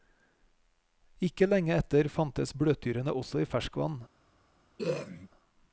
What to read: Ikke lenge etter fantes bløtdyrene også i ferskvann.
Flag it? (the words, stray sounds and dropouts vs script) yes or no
yes